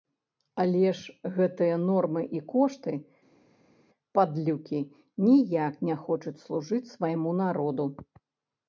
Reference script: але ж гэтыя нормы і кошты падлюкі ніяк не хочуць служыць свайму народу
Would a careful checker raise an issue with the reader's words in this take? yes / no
no